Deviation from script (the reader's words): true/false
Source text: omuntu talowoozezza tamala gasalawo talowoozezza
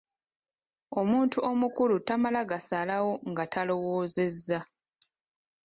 true